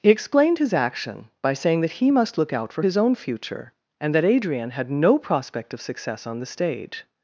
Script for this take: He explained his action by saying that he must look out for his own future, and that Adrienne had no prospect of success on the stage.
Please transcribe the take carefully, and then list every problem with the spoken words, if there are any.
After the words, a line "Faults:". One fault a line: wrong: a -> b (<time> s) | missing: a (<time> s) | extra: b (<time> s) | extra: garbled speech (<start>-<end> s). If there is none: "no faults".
He explained his action by saying that he must look out for his own future, and that Adrienne had no prospect of success on the stage.
Faults:
no faults